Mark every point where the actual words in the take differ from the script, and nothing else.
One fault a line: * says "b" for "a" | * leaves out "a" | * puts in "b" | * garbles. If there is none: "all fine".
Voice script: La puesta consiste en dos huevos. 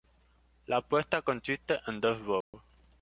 all fine